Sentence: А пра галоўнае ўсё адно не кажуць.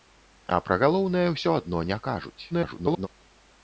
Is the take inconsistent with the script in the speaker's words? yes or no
yes